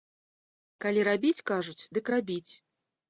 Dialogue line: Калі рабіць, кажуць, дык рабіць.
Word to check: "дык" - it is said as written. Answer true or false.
true